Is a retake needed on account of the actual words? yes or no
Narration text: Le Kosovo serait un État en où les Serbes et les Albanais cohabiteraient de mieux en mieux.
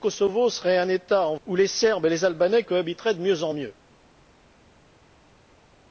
no